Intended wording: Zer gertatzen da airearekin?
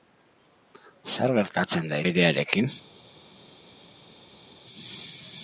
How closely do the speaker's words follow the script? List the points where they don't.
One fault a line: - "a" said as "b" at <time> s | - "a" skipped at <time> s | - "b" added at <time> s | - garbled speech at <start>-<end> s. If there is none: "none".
none